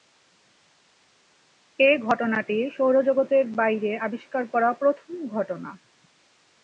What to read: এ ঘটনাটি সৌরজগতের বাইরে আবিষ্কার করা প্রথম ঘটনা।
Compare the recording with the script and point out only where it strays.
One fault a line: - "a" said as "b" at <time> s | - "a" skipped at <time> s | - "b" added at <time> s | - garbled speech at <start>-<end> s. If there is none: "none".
none